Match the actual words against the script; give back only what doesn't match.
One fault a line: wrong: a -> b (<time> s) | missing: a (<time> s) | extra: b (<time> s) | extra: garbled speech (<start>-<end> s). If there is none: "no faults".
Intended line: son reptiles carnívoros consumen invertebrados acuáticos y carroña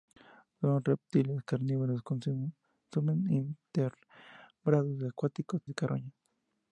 no faults